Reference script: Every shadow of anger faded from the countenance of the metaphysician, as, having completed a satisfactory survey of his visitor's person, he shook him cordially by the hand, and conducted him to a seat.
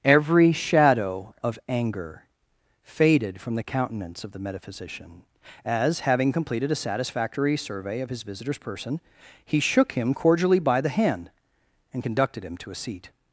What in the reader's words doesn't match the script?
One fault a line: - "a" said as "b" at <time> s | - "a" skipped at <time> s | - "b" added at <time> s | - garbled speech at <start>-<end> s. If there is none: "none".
none